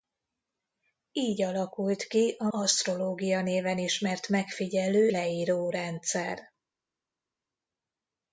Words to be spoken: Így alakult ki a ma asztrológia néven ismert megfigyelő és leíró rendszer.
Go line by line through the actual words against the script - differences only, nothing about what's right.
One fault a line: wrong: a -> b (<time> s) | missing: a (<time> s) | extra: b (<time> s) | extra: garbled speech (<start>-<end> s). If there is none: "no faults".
missing: ma (2.5 s)
missing: és (5.1 s)